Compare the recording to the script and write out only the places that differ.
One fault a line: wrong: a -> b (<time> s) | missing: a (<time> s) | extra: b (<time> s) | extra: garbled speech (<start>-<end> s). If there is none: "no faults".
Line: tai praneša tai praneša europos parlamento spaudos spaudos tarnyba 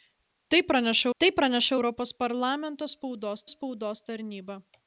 no faults